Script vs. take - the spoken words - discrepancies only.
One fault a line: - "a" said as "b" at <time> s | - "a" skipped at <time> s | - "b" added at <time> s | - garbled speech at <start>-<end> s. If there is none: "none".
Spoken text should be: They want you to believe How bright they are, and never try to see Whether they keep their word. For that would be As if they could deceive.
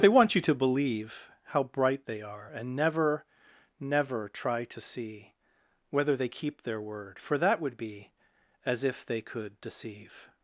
- "never" added at 3.8 s